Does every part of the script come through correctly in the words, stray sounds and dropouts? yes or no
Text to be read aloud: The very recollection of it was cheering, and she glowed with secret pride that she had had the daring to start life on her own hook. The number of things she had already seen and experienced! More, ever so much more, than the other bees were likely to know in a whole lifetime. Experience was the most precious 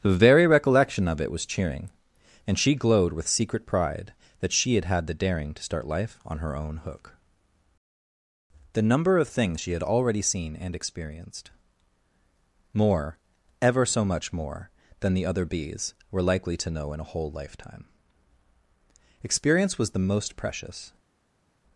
yes